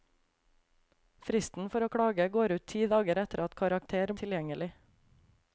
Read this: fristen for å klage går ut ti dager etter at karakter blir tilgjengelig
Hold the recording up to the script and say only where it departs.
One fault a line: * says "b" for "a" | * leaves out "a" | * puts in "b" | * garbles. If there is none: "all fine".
* leaves out "blir"